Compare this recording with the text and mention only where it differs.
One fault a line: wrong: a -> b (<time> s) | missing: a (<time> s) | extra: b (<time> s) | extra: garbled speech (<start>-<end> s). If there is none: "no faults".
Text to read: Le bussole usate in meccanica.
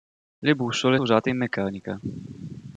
no faults